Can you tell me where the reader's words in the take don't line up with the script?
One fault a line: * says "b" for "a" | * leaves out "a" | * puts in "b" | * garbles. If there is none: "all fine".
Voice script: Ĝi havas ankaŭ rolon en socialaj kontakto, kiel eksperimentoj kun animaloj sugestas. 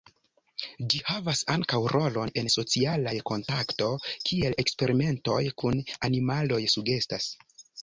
all fine